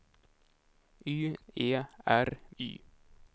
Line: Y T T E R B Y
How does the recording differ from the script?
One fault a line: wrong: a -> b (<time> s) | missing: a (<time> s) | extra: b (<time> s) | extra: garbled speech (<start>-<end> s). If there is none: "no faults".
missing: T T (1.4 s)
missing: B (2.4 s)